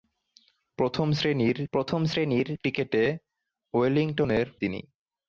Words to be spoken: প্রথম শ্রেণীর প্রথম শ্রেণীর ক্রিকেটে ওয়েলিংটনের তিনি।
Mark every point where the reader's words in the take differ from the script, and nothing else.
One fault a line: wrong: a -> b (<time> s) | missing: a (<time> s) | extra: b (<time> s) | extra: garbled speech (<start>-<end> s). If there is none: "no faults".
no faults